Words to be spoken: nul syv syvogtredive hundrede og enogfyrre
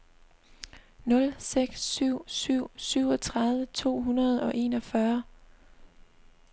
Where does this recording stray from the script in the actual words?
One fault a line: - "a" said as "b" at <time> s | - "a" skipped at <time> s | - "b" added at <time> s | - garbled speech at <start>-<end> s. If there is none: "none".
- "seks" added at 1.4 s
- "syv" added at 2.3 s
- "to" added at 3.6 s